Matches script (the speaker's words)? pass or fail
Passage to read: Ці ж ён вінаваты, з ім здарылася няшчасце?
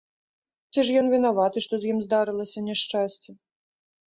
fail